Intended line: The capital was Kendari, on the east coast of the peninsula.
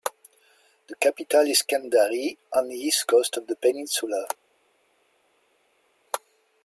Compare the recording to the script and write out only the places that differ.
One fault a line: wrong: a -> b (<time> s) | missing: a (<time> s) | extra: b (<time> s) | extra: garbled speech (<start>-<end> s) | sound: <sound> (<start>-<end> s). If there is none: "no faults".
wrong: was -> is (1.4 s)